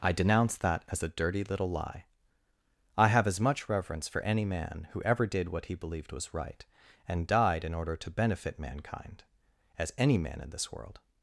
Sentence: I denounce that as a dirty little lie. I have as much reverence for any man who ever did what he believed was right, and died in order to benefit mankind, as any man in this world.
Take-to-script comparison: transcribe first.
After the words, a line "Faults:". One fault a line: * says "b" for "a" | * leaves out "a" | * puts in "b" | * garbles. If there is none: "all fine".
I denounce that as a dirty little lie. I have as much reverence for any man who ever did what he believed was right, and died in order to benefit mankind, as any man in this world.
Faults:
all fine